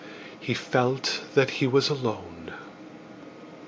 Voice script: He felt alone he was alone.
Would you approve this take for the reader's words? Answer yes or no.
no